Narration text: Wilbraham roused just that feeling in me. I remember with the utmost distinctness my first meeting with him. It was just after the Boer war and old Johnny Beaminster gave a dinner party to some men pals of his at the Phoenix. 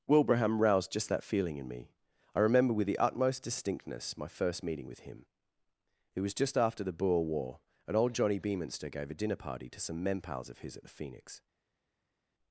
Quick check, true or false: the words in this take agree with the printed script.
true